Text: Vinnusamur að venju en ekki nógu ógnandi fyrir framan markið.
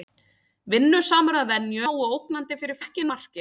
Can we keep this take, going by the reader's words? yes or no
no